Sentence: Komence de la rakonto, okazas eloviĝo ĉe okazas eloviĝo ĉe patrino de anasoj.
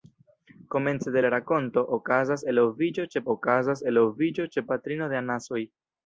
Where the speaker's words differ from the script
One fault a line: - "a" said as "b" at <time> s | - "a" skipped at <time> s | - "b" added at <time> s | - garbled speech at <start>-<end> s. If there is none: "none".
none